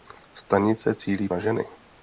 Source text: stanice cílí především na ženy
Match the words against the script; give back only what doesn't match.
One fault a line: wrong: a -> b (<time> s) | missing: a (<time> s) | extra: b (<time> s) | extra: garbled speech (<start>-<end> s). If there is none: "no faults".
missing: především (1.3 s)